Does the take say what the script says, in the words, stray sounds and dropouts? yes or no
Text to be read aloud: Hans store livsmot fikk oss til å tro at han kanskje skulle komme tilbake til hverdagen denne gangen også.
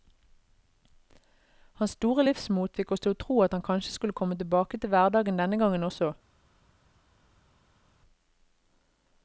yes